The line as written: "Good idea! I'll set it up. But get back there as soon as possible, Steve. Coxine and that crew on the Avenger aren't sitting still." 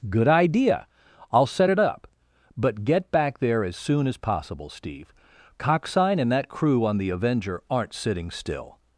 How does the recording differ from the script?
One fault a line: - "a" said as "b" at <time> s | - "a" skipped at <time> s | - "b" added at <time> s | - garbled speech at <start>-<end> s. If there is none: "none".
none